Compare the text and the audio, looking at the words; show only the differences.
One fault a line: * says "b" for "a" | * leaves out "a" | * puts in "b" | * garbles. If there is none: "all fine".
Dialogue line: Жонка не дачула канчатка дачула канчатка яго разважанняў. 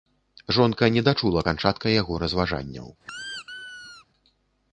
* leaves out "дачула канчатка"